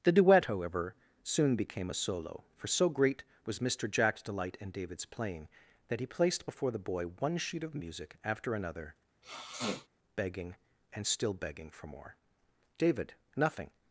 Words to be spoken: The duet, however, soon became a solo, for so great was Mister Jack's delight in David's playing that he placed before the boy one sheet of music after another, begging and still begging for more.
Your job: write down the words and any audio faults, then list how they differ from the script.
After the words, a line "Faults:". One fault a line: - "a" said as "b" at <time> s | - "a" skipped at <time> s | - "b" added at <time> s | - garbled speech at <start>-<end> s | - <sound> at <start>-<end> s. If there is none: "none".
The duet, however, soon became a solo, for so great was Mister Jack's delight in David's playing that he placed before the boy one sheet of music after another, begging and still begging for more. David, nothing
Faults:
- sniff at 9.2-9.9 s
- "David nothing" added at 12.8 s